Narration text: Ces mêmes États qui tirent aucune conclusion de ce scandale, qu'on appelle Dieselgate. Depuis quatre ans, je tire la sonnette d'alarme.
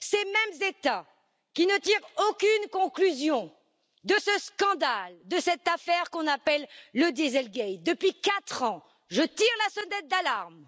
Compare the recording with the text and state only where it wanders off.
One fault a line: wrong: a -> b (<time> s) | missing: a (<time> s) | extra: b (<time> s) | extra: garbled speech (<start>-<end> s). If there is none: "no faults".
extra: ne (1.7 s)
extra: de cette affaire (5.2 s)
extra: le (6.9 s)